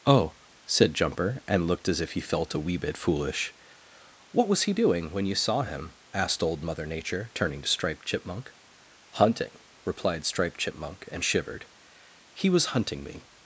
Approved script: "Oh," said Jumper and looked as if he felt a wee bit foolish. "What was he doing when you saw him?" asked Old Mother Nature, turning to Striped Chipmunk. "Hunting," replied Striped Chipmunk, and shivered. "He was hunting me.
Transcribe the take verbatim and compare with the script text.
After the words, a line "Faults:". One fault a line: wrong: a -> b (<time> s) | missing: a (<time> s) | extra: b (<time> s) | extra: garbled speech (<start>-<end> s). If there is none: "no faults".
"Oh," said Jumper and looked as if he felt a wee bit foolish. "What was he doing when you saw him?" asked Old Mother Nature, turning to Striped Chipmunk. "Hunting," replied Striped Chipmunk, and shivered. "He was hunting me.
Faults:
no faults